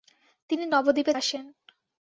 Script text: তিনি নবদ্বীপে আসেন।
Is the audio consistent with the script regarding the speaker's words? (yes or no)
yes